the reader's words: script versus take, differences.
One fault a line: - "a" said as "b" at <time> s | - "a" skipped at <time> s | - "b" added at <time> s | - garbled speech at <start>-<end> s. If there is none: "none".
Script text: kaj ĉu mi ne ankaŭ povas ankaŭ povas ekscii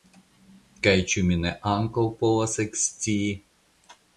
- "ankaŭ povas" skipped at 2.6 s